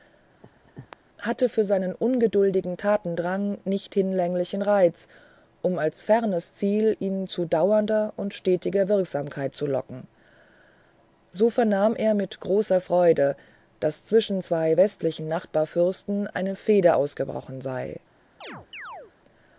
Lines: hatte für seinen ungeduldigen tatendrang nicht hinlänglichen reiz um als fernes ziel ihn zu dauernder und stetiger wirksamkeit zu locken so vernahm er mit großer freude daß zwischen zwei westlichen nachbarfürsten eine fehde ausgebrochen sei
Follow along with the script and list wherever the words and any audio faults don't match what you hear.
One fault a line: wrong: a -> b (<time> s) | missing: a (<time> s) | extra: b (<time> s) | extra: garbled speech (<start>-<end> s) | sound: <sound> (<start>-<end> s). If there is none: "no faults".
sound: laugh (0.4-1.0 s)
sound: chirp (18.4-19.1 s)